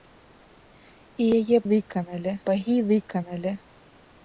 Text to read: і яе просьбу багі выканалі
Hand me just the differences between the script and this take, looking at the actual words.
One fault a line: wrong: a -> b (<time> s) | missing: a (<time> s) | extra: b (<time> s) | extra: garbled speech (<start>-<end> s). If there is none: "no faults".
wrong: просьбу -> выканалі (1.7 s)